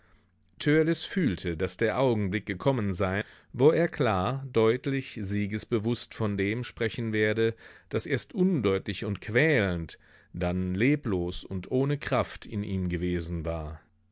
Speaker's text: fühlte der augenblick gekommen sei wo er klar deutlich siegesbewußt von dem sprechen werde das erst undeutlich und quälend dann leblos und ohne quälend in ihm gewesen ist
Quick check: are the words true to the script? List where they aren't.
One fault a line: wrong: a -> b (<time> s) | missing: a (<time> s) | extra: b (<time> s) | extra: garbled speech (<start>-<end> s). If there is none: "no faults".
extra: daß (1.6 s)
wrong: quälend -> kraft (12.0 s)
wrong: ist -> war (13.5 s)